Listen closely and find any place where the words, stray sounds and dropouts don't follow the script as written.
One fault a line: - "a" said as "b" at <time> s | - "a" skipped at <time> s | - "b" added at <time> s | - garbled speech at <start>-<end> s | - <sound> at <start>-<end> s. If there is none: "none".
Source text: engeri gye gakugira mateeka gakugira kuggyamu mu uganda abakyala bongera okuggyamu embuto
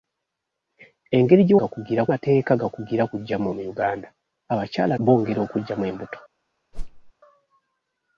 - whoosh at 6.7-7.1 s